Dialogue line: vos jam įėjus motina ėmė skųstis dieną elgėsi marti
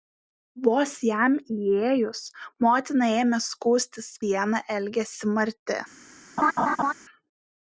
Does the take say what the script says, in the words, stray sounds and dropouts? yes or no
no